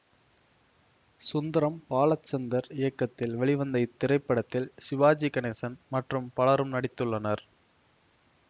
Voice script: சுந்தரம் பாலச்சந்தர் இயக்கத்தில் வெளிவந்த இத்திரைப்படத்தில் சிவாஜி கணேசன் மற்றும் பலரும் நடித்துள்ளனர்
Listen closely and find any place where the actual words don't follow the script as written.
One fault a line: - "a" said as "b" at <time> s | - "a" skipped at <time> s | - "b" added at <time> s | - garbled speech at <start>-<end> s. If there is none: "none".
none